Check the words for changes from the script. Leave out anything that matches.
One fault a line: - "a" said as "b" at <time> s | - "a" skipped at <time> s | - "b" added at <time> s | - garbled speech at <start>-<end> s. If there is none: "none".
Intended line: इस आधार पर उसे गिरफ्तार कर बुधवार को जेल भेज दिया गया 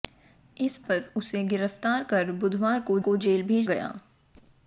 - "आधार" skipped at 0.8 s
- "को" added at 3.0 s
- "दिया" skipped at 3.7 s